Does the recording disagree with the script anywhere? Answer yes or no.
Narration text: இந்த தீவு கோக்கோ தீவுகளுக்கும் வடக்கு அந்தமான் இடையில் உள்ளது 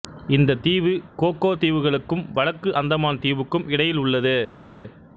yes